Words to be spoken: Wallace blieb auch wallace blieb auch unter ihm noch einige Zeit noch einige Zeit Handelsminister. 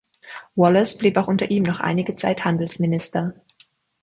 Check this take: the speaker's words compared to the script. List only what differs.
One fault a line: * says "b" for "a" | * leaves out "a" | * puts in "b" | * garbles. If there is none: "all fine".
* leaves out "wallace blieb auch"
* leaves out "noch einige Zeit"